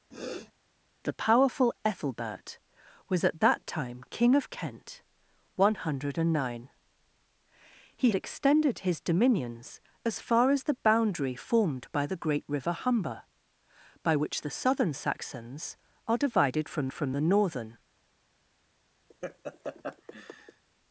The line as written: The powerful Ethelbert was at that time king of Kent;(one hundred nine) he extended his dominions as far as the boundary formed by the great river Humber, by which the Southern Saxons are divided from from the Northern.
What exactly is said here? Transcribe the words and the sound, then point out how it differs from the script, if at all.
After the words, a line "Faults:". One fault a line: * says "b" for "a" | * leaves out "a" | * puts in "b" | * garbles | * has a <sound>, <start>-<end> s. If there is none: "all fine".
The powerful Ethelbert was at that time king of Kent;(one hundred nine) he extended his dominions as far as the boundary formed by the great river Humber, by which the Southern Saxons are divided from from the Northern.
Faults:
* has a sniff, 0.1-0.5 s
* has a laugh, 19.1-20.6 s